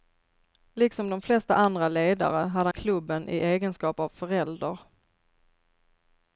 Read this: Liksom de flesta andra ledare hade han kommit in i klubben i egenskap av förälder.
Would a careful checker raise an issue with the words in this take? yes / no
yes